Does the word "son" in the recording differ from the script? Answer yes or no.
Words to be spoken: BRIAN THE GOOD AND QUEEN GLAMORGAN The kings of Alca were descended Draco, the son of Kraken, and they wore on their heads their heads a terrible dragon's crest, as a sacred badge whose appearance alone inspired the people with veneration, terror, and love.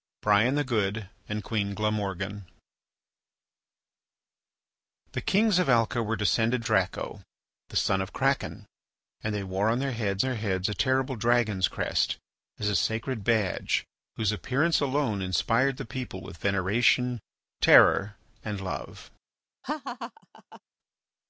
no